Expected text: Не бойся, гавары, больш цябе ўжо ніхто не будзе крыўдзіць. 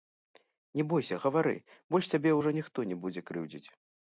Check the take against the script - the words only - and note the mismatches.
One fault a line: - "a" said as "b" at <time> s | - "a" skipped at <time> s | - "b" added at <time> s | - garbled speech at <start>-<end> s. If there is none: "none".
none